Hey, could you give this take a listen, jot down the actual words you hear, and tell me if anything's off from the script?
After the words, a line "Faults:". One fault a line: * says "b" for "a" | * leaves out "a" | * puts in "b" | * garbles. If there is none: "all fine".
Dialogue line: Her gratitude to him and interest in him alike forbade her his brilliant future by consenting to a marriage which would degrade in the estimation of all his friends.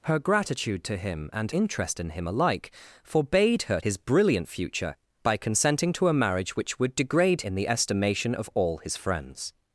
Her gratitude to him and interest in him alike forbade her his brilliant future by consenting to a marriage which would degrade in the estimation of all his friends.
Faults:
all fine